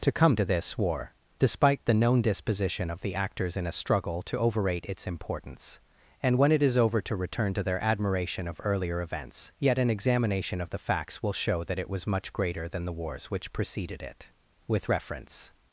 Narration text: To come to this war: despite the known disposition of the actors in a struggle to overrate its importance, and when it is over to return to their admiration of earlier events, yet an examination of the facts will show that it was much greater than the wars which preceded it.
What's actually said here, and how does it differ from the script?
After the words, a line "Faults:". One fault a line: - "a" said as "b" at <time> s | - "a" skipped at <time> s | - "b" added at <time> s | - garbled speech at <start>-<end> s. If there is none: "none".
To come to this war: despite the known disposition of the actors in a struggle to overrate its importance, and when it is over to return to their admiration of earlier events, yet an examination of the facts will show that it was much greater than the wars which preceded it. With reference
Faults:
- "With reference" added at 14.7 s